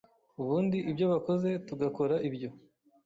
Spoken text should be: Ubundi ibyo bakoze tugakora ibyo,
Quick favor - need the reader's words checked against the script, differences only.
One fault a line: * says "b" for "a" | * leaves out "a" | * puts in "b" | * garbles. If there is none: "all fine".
all fine